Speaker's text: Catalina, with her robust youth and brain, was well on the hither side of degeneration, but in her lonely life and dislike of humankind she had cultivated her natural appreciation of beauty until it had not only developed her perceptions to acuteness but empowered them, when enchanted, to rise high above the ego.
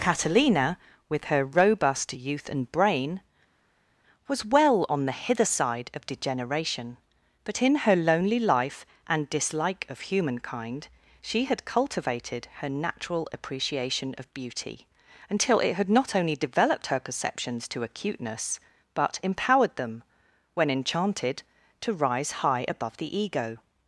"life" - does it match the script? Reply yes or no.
yes